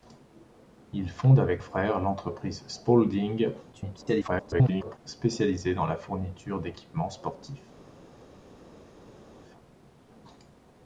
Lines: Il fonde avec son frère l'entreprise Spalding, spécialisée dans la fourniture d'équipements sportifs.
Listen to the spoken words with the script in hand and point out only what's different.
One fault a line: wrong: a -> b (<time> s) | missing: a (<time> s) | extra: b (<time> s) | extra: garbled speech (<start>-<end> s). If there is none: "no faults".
missing: son (1.6 s)
extra: garbled speech (3.7-5.0 s)